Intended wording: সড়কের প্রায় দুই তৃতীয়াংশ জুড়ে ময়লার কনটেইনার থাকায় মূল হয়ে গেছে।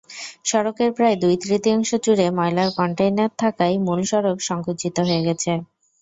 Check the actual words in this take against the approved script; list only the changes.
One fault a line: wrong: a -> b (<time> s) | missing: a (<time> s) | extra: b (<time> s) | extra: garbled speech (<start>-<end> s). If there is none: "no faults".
extra: সড়ক সংকুচিত (4.1 s)